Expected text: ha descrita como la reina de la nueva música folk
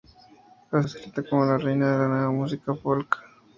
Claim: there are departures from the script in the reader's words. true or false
false